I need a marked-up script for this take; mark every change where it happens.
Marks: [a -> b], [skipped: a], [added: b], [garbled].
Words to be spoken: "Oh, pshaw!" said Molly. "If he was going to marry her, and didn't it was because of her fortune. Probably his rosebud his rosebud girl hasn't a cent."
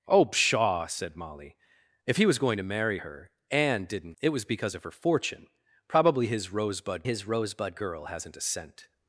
"Oh, pshaw!" said Molly. "If he was going to marry her, and didn't it was because of her fortune. Probably his rosebud his rosebud girl hasn't a cent."